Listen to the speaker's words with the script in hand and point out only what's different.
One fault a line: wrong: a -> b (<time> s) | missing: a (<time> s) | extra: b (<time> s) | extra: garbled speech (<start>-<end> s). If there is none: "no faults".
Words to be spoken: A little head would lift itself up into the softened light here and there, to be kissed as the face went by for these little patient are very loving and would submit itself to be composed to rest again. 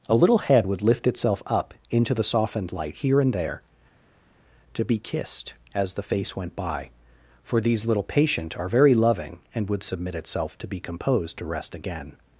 no faults